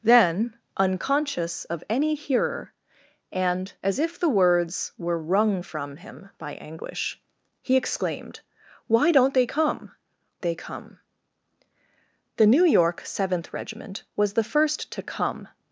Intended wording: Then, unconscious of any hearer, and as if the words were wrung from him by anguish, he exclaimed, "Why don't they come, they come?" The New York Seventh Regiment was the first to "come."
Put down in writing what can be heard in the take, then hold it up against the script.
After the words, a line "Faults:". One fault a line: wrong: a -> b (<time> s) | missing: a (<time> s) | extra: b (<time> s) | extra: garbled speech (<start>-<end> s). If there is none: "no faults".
Then, unconscious of any hearer, and as if the words were wrung from him by anguish, he exclaimed, "Why don't they come, they come?" The New York Seventh Regiment was the first to "come."
Faults:
no faults